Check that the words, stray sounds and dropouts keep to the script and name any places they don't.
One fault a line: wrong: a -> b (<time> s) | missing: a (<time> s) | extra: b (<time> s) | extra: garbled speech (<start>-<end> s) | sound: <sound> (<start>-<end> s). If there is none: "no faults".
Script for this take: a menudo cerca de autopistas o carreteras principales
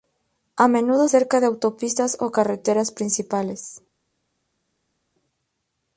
no faults